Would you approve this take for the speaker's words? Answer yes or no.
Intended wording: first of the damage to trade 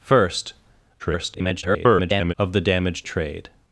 no